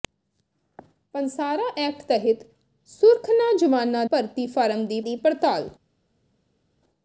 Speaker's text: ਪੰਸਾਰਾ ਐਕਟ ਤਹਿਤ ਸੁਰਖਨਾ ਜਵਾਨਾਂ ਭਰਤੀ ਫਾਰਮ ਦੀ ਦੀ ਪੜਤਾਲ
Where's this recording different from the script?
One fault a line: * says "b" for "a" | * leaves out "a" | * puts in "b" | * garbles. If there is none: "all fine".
all fine